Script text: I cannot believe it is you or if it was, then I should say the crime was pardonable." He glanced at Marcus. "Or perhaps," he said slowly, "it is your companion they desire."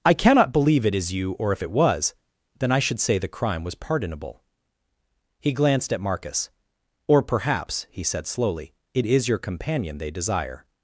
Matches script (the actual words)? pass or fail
pass